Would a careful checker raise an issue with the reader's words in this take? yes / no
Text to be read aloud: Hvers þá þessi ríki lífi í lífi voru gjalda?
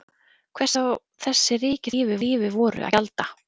no